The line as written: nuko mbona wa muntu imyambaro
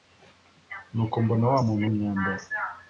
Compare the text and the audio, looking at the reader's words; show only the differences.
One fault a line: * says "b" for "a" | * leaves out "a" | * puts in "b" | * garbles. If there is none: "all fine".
all fine